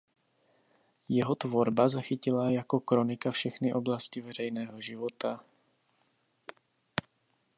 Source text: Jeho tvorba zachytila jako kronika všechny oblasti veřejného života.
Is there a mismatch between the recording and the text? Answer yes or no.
no